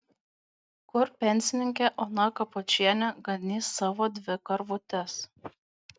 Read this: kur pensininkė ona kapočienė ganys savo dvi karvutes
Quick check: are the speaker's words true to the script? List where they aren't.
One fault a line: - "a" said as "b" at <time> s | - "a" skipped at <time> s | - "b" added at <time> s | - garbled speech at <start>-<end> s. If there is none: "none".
none